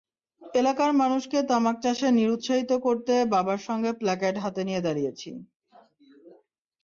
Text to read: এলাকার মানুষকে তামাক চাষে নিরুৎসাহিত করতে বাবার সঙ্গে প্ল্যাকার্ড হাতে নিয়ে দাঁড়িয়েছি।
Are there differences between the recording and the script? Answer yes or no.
no